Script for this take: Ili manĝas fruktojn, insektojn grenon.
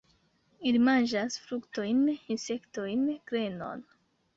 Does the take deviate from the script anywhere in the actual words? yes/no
no